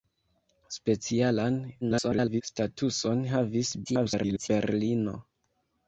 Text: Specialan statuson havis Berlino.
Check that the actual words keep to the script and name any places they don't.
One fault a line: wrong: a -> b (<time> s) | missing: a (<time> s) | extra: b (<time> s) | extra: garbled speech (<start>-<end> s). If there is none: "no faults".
extra: garbled speech (1.8-2.4 s)
extra: garbled speech (3.8-4.5 s)